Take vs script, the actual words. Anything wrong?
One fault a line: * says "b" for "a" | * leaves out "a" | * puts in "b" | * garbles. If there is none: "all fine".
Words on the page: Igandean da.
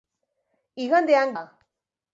all fine